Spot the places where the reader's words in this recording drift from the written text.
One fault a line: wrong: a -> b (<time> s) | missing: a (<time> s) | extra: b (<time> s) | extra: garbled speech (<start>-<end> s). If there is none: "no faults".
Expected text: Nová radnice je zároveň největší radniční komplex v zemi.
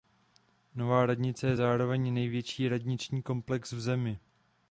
no faults